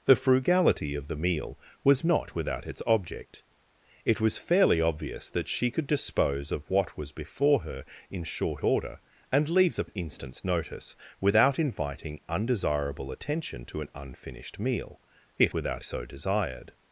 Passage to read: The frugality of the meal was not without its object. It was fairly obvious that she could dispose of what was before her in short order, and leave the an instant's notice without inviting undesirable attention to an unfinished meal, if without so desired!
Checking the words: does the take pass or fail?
pass